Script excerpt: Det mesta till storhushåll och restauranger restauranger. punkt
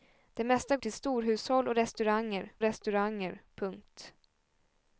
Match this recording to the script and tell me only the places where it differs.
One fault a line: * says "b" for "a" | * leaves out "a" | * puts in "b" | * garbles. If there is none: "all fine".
all fine